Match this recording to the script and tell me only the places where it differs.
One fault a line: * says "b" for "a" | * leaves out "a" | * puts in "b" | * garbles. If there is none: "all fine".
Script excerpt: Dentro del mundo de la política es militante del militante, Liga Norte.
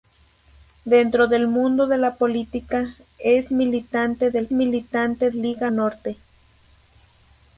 all fine